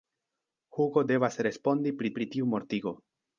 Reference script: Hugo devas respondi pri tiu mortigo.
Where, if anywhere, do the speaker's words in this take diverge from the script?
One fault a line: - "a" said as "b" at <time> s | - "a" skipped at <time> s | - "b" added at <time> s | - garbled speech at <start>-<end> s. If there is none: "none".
- "pri" added at 2.2 s